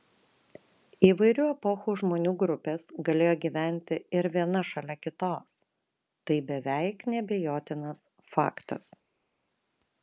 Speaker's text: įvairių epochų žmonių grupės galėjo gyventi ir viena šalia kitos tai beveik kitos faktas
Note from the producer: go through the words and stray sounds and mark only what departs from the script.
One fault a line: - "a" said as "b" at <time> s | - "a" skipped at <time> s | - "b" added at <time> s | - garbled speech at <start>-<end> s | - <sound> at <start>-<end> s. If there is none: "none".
- "kitos" said as "neabejotinas" at 7.1 s